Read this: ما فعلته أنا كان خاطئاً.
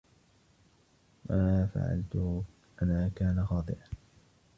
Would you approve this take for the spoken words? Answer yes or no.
yes